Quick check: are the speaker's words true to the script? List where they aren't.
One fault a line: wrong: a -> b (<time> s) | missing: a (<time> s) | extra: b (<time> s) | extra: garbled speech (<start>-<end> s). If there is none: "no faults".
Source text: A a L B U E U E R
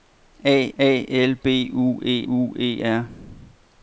no faults